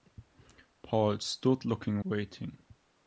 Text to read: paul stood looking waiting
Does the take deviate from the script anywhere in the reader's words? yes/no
no